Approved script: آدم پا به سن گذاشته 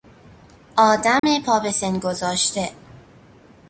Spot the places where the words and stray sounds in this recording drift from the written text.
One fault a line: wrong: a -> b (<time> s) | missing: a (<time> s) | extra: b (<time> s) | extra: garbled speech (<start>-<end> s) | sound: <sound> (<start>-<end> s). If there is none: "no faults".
sound: dropout (1.2-1.2 s)